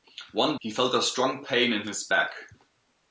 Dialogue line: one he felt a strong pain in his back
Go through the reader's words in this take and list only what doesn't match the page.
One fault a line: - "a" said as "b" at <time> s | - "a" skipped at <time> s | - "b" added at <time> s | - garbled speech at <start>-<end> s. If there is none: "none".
none